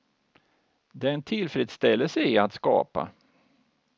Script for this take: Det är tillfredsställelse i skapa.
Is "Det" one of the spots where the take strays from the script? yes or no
no